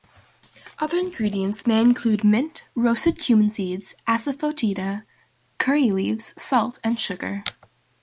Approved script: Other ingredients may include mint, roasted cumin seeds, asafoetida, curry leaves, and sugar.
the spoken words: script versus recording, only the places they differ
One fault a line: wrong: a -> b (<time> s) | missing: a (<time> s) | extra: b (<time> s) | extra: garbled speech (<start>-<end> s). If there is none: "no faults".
extra: salt (6.4 s)